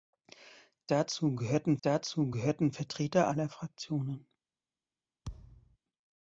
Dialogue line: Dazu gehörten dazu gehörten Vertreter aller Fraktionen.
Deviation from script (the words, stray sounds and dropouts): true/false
true